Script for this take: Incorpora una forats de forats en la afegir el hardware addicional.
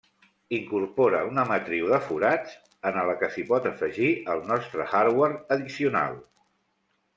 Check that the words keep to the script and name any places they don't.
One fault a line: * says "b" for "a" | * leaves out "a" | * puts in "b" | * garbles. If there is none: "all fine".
* says "matriu" for "forats"
* puts in "que s'hi pot"
* puts in "nostre"